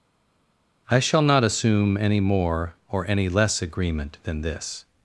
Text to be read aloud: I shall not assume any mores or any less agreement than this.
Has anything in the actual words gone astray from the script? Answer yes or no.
yes